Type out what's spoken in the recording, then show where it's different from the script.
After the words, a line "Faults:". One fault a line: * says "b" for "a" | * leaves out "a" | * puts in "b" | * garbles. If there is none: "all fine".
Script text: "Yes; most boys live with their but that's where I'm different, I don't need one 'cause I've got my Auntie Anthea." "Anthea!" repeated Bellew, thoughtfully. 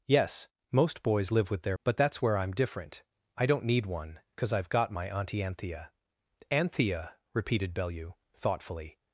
"Yes; most boys live with their but that's where I'm different, I don't need one 'cause I've got my Auntie Anthea." "Anthea!" repeated Bellew, thoughtfully.
Faults:
all fine